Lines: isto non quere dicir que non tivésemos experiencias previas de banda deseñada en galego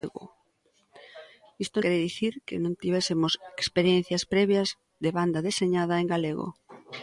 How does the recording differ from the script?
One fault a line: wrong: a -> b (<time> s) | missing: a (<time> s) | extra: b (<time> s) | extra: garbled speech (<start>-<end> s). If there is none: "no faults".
missing: non (1.8 s)